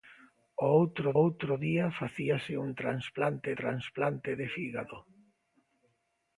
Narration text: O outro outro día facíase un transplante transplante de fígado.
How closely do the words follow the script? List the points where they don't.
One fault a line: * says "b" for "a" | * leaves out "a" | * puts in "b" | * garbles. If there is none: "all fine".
all fine